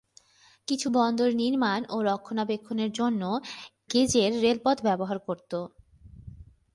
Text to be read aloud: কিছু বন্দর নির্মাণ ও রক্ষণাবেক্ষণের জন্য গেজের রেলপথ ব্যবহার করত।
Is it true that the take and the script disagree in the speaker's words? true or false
false